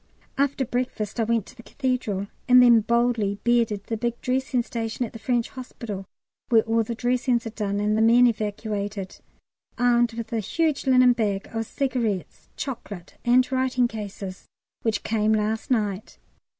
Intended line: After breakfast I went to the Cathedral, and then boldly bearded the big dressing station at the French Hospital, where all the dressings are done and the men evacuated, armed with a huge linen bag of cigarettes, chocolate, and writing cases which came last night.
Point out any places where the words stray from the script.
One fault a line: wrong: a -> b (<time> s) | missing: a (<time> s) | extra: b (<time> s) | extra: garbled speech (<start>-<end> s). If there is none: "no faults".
no faults